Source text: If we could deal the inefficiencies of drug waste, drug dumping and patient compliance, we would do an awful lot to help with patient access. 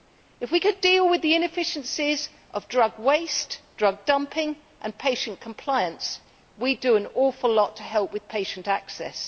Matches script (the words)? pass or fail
fail